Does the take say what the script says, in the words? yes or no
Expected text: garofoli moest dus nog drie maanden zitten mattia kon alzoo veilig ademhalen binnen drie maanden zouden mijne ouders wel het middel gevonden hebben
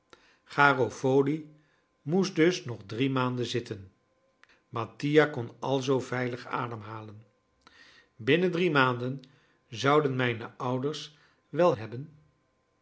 no